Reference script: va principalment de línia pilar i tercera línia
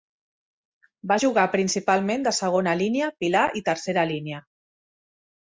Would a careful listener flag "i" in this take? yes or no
no